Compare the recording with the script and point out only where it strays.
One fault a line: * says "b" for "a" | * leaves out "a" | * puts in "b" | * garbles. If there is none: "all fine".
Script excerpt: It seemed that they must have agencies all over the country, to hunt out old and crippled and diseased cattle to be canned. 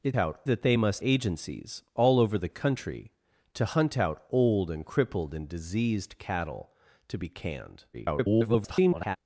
* says "out" for "seemed"
* leaves out "have"
* garbles